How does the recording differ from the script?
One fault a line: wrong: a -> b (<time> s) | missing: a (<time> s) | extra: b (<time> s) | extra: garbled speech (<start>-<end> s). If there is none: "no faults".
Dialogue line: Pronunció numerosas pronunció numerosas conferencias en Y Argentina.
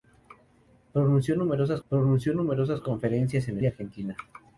no faults